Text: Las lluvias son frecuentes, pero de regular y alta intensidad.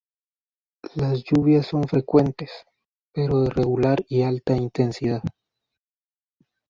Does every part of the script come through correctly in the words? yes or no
yes